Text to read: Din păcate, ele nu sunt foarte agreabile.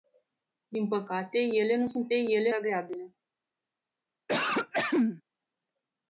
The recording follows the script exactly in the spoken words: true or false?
false